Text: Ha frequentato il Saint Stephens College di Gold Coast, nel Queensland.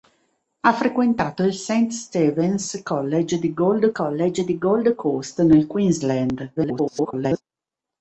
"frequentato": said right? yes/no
yes